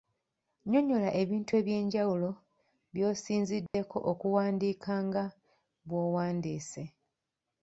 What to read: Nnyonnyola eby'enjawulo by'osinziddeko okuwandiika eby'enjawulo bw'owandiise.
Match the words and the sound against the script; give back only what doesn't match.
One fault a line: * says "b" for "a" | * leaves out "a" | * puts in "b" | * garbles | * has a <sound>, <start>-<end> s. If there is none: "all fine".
* puts in "ebintu"
* has a dropout, 3.7-3.7 s
* says "nga" for "eby'enjawulo"